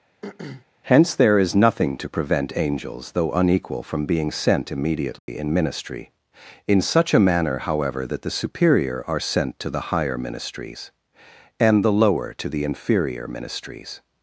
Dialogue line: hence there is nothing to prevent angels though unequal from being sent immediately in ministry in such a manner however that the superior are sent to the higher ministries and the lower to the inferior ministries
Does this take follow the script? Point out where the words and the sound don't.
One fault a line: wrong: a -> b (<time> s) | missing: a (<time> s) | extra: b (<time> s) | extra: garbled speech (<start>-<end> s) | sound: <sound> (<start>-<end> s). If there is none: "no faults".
sound: throat clearing (0.2-0.7 s)
sound: dropout (5.2-5.3 s)